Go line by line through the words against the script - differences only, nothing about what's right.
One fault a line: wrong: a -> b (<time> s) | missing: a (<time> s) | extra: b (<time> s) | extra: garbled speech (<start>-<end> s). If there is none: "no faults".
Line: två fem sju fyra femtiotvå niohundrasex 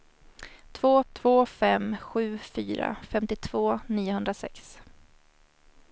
extra: två (1.1 s)